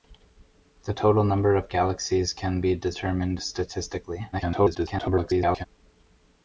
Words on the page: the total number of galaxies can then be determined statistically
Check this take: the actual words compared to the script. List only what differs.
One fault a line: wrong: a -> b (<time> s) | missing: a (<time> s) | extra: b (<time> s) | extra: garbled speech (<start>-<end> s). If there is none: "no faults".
missing: then (2.6 s)
extra: garbled speech (4.3-5.7 s)